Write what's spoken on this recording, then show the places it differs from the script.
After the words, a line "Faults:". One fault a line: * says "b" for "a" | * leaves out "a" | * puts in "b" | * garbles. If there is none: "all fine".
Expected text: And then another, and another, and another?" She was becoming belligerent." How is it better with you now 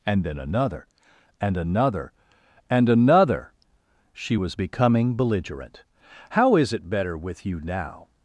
And then another, and another, and another?" She was becoming belligerent." How is it better with you now
Faults:
all fine